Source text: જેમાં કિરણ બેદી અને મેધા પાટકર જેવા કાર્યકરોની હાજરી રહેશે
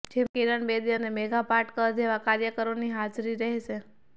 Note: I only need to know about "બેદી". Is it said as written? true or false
true